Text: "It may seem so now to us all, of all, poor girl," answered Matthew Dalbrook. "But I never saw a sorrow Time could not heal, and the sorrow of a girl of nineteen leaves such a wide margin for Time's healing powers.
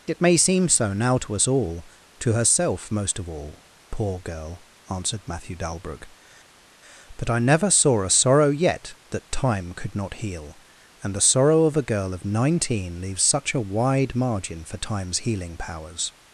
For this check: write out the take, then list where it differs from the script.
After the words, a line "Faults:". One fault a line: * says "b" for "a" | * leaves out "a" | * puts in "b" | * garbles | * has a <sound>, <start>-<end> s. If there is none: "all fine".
"It may seem so now to us all, to herself most of all, poor girl," answered Matthew Dalbrook. "But I never saw a sorrow yet that Time could not heal, and the sorrow of a girl of nineteen leaves such a wide margin for Time's healing powers.
Faults:
* puts in "to herself most"
* puts in "yet that"